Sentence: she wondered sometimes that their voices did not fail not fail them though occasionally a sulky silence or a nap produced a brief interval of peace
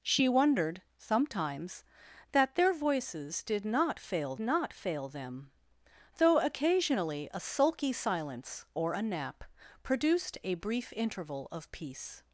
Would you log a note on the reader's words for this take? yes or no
no